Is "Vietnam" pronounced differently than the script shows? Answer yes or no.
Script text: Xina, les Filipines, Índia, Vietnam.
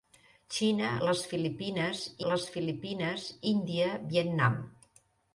no